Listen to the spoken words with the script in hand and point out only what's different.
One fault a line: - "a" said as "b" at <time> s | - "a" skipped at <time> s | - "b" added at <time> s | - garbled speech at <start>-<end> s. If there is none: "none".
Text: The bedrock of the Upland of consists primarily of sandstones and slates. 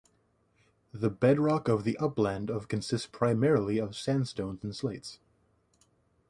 none